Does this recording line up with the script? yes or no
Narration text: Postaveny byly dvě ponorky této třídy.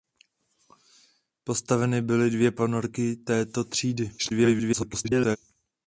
no